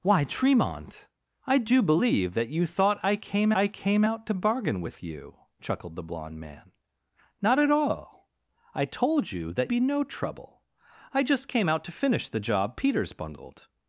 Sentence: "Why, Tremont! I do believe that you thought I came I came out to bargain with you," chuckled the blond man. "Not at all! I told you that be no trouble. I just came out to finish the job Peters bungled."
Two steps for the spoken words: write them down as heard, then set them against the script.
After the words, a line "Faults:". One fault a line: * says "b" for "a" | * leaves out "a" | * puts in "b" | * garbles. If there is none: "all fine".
"Why, Tremont! I do believe that you thought I came I came out to bargain with you," chuckled the blond man. "Not at all! I told you that be no trouble. I just came out to finish the job Peters bungled."
Faults:
all fine